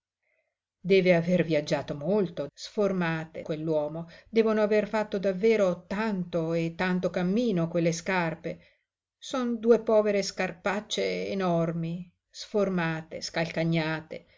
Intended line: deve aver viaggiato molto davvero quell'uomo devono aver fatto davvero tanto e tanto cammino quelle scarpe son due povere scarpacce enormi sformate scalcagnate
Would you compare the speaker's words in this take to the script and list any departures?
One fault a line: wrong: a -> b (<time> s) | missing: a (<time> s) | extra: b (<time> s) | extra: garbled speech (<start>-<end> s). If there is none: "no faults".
wrong: davvero -> sformate (2.5 s)